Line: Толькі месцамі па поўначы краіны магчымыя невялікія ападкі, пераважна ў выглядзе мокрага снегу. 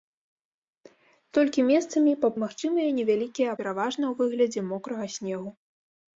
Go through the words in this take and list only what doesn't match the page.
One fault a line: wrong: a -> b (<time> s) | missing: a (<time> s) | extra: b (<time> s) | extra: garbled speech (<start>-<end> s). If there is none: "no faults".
missing: поўначы краіны (2.3 s)
missing: ападкі (3.5 s)